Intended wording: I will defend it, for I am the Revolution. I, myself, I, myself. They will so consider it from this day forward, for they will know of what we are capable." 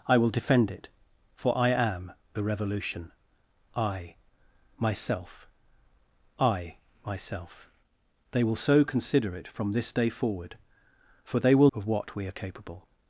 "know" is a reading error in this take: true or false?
true